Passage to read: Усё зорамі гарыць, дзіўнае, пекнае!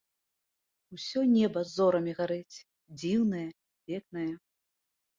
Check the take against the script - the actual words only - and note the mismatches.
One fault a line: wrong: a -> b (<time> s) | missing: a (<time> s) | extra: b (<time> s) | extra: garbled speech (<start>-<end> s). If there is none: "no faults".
extra: неба (1.3 s)